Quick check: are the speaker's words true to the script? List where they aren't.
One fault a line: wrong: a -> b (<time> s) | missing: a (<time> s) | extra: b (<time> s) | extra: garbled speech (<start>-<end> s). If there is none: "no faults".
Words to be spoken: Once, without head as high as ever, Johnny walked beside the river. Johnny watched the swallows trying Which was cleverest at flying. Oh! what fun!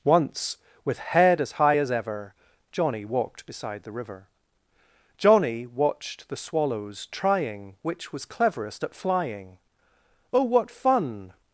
wrong: without -> with (0.8 s)